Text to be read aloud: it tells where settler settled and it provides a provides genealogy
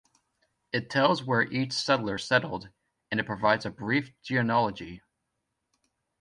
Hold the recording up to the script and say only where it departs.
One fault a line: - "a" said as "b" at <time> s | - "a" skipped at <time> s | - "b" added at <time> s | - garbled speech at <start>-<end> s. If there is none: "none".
- "each" added at 1.4 s
- "provides" said as "brief" at 3.7 s